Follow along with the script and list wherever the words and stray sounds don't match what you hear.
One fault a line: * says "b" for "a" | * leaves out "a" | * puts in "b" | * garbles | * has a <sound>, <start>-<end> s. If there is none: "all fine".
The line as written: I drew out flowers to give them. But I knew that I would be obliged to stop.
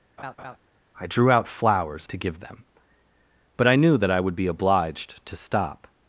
* has a laugh, 0.2-0.6 s